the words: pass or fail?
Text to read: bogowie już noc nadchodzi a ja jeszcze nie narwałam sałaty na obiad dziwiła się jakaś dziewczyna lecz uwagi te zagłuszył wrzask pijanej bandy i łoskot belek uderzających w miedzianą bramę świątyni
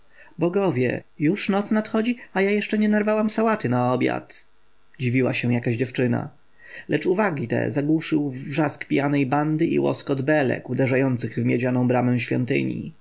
pass